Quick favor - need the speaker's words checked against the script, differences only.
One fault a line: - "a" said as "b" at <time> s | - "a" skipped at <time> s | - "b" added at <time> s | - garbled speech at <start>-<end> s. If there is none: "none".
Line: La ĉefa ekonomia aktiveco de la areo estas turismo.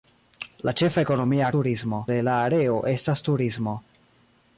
- "aktiveco" said as "turismo" at 1.6 s